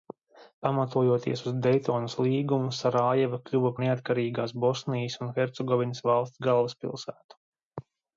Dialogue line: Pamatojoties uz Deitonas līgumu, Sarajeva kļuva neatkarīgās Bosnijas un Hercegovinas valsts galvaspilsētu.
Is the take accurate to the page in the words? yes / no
yes